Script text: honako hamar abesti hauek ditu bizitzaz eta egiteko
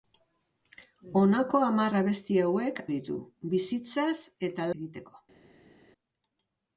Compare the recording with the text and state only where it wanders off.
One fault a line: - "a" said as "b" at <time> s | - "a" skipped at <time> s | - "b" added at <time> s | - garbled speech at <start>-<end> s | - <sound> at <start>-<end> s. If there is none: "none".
none